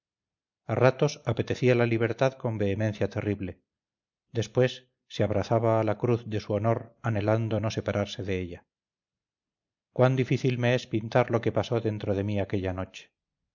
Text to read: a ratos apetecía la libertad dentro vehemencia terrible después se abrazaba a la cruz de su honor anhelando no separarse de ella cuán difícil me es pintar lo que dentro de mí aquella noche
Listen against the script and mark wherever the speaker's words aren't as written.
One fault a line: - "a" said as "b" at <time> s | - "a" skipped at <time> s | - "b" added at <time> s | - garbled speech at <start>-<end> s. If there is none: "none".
- "dentro" said as "con" at 2.3 s
- "pasó" added at 11.5 s